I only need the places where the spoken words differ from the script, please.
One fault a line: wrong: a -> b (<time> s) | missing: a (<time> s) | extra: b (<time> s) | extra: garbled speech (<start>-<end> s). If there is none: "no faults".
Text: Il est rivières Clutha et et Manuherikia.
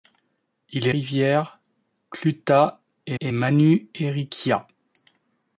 no faults